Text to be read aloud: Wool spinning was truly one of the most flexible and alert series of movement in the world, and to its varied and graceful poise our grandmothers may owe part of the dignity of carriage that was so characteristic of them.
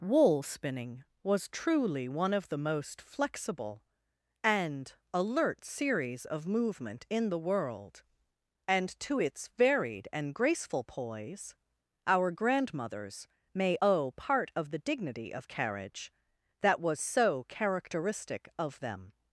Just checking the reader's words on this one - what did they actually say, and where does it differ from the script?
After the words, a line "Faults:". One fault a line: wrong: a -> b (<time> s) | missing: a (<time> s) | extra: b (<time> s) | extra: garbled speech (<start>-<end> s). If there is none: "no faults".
Wool spinning was truly one of the most flexible and alert series of movement in the world, and to its varied and graceful poise our grandmothers may owe part of the dignity of carriage that was so characteristic of them.
Faults:
no faults